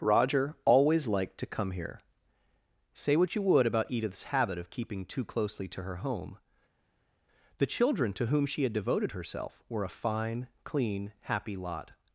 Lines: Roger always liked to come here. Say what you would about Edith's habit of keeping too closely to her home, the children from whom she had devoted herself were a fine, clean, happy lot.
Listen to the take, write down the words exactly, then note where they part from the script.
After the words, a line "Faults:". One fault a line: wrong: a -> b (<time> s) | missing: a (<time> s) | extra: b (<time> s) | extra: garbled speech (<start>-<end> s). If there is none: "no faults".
Roger always liked to come here. Say what you would about Edith's habit of keeping too closely to her home, the children to whom she had devoted herself were a fine, clean, happy lot.
Faults:
wrong: from -> to (8.1 s)